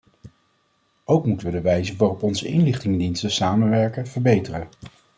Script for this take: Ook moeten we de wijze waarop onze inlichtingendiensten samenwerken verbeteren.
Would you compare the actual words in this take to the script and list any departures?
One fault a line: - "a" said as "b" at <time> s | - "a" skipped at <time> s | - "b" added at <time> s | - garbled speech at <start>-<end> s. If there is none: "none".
none